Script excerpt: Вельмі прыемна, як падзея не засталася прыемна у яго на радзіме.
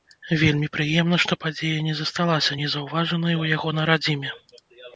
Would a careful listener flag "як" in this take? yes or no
yes